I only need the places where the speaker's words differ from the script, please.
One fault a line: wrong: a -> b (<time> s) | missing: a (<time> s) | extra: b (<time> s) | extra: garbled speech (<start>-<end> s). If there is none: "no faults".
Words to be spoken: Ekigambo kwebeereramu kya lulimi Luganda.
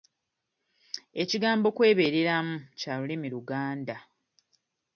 no faults